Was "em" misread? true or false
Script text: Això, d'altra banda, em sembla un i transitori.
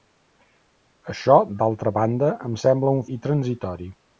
false